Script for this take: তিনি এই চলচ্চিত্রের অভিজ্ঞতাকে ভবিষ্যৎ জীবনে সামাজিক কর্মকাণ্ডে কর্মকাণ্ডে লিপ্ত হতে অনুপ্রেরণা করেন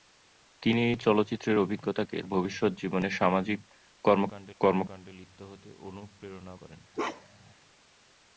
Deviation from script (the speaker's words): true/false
false